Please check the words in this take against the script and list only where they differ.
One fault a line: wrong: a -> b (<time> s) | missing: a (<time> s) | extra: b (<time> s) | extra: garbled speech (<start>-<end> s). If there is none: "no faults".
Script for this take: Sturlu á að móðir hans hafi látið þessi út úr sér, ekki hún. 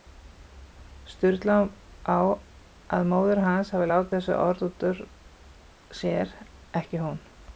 extra: orð (4.4 s)